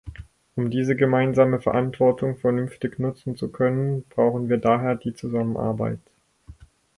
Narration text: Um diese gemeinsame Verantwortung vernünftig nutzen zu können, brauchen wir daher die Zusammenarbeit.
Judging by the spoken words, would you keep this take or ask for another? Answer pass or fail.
pass